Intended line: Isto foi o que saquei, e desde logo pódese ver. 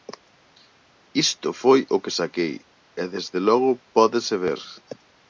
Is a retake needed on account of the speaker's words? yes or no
no